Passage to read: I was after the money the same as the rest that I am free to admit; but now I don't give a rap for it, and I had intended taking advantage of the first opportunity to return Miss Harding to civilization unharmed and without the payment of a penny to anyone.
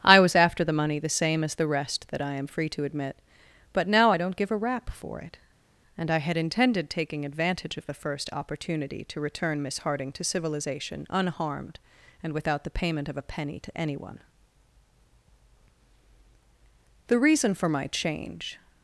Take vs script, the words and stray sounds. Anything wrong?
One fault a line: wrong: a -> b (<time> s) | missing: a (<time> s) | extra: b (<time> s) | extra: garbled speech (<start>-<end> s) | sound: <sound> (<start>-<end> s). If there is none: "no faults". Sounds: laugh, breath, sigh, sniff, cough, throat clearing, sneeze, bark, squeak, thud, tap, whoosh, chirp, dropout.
extra: The reason for my change (17.1 s)